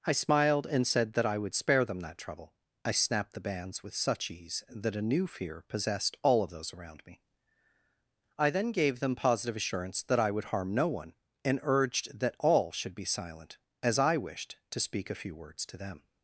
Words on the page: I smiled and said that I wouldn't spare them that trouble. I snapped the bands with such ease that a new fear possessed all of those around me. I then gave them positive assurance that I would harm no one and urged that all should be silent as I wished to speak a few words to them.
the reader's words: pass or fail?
fail